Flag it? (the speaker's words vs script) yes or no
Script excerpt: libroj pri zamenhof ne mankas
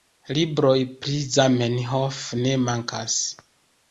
no